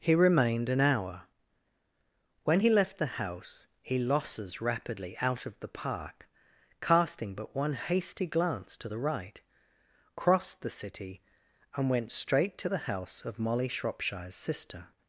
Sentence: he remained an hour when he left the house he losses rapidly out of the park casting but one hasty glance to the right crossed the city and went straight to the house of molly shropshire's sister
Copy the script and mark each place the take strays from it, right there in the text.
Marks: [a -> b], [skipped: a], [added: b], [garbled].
he remained an hour when he left the house he losses rapidly out of the park casting but one hasty glance to the right crossed the city and went straight to the house of molly shropshire's sister